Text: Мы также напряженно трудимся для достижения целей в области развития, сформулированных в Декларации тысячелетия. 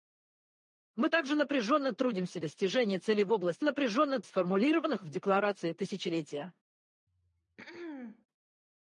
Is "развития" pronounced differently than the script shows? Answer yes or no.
yes